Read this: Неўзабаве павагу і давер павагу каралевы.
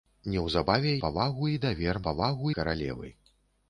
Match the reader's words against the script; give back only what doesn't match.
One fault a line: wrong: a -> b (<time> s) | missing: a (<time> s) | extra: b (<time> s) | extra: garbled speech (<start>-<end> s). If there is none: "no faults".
no faults